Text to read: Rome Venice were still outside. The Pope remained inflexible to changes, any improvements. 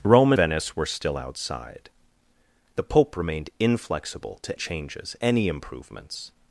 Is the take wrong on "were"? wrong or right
right